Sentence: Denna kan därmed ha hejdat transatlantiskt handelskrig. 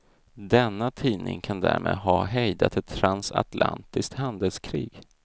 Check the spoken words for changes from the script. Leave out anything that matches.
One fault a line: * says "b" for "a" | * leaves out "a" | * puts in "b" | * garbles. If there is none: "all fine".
* puts in "tidning"
* puts in "ett"